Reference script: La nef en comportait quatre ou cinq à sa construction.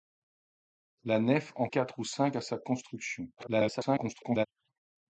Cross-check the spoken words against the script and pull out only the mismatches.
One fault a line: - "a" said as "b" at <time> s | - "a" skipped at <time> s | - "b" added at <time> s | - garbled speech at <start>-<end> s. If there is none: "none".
- "comportait" skipped at 1.7 s
- garbled speech at 3.4-4.5 s